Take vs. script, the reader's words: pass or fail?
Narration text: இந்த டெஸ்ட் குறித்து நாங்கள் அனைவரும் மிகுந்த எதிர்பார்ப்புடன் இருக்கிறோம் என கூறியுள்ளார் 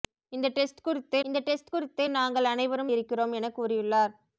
fail